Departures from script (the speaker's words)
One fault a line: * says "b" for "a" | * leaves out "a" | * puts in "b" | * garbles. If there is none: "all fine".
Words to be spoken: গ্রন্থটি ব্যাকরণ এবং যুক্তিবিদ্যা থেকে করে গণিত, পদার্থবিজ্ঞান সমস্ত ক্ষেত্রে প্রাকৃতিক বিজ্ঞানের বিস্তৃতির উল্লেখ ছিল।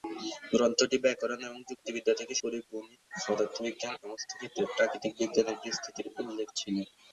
all fine